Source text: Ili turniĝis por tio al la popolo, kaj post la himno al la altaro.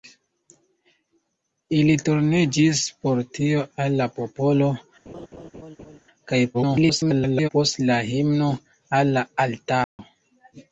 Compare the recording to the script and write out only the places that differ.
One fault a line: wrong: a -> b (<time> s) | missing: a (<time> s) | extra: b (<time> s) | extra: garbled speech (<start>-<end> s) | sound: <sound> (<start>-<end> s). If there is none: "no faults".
sound: laugh (5.1-6.0 s)
extra: garbled speech (6.5-7.5 s)
sound: dropout (9.8-10.0 s)